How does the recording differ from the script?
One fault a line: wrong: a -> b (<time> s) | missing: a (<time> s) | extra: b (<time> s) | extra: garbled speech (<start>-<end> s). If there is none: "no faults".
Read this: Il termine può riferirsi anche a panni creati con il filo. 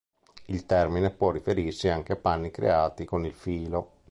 no faults